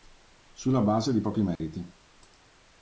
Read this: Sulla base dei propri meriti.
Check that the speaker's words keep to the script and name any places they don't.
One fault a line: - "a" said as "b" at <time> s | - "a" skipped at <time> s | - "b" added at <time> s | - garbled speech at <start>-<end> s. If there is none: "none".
none